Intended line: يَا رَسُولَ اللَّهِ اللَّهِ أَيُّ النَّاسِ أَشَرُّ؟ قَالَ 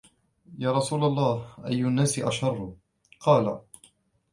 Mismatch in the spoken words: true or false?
true